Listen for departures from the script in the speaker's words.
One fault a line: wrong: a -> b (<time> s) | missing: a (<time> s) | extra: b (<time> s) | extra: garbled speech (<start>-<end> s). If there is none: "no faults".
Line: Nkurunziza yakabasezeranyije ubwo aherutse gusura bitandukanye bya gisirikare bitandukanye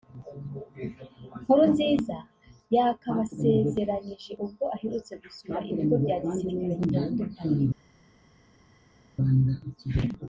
wrong: bitandukanye -> ibigo (5.7 s)